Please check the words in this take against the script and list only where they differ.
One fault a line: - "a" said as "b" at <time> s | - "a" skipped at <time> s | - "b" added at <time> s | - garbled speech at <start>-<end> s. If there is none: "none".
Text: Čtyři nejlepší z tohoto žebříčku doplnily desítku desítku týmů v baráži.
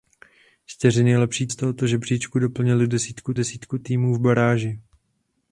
none